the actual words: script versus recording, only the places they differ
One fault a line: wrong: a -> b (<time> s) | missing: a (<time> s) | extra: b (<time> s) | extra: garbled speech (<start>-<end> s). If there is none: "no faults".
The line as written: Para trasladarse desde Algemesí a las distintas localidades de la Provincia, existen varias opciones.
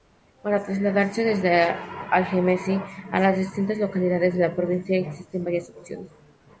no faults